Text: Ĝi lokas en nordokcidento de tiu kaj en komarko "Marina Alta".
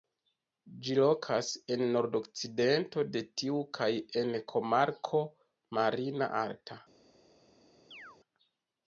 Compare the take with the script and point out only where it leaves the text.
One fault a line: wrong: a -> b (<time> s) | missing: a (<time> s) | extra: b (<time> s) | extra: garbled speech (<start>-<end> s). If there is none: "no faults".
no faults